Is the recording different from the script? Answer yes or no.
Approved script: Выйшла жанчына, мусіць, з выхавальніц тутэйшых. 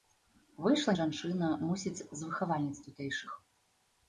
no